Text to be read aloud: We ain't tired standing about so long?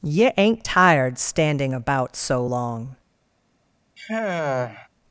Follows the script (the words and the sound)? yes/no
no